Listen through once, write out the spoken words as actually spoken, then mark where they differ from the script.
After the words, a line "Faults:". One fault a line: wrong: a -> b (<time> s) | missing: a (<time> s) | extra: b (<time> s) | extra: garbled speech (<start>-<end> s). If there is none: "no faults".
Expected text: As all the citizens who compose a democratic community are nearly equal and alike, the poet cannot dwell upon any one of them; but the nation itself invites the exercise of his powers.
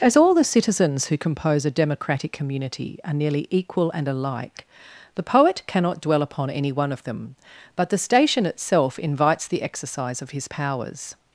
As all the citizens who compose a democratic community are nearly equal and alike, the poet cannot dwell upon any one of them; but the station itself invites the exercise of his powers.
Faults:
wrong: nation -> station (8.0 s)